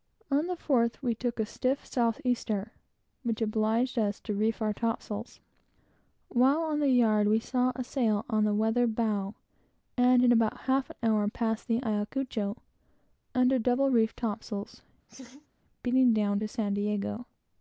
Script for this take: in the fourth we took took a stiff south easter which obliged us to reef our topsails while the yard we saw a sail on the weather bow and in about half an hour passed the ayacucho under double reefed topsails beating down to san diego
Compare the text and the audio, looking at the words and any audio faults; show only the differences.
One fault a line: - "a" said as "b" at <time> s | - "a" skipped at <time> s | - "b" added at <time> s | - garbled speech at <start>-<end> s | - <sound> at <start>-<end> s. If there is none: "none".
- "in" said as "on" at 0.3 s
- "took" skipped at 1.4 s
- "on" added at 6.6 s
- laugh at 15.1-15.5 s